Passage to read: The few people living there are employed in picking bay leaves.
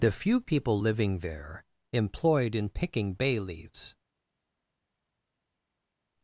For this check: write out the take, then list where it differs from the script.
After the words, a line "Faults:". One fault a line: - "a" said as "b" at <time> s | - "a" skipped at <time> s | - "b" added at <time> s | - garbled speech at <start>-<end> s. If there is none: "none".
The few people living there employed in picking bay leaves.
Faults:
- "are" skipped at 1.7 s